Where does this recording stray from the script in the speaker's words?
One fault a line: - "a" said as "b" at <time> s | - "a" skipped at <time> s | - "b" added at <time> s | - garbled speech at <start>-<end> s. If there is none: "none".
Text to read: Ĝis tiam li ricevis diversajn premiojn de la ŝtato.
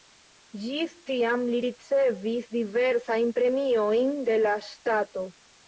none